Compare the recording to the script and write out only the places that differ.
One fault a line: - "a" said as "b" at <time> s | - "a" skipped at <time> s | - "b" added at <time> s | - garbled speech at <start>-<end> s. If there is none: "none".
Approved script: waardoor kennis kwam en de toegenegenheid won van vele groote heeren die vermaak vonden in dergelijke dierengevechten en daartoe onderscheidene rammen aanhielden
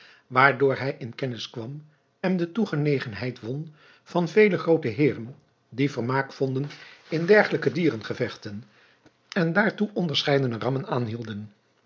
- "hij in" added at 0.8 s